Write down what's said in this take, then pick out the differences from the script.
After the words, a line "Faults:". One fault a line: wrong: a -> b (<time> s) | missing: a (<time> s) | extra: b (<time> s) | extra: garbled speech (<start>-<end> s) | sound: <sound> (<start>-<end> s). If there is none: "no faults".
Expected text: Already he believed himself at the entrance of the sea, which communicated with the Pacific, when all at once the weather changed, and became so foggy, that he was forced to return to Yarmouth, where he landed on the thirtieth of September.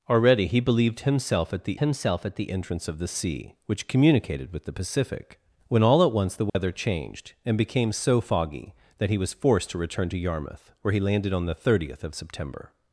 Already he believed himself at the himself at the entrance of the sea, which communicated with the Pacific, when all at once the weather changed, and became so foggy, that he was forced to return to Yarmouth, where he landed on the thirtieth of September.
Faults:
extra: himself at the (1.8 s)
sound: dropout (6.5-6.5 s)